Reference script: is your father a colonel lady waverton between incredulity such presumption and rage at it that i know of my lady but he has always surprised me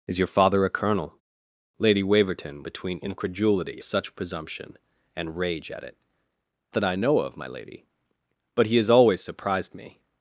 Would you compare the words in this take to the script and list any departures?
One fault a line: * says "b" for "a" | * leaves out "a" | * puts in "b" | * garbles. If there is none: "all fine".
all fine